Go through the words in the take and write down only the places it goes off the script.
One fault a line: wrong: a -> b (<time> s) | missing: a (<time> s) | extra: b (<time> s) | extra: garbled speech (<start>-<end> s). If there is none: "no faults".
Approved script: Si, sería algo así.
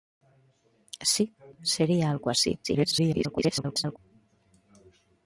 extra: garbled speech (2.6-4.0 s)